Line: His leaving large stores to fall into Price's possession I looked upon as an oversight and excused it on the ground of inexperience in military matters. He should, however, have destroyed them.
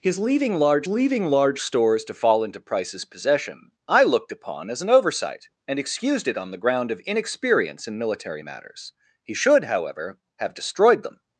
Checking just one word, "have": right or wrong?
right